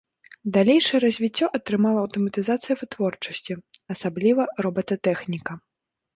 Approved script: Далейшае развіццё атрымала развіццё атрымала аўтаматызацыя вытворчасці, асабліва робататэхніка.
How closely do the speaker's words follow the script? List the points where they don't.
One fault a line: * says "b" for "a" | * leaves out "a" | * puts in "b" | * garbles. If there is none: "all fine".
* leaves out "развіццё атрымала"